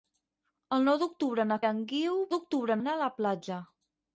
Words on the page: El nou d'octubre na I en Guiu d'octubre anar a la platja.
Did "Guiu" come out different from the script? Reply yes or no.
no